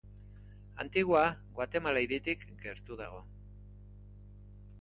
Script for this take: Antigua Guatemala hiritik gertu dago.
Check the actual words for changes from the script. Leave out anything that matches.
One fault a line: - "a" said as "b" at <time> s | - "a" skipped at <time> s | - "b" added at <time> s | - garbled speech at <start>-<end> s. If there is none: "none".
none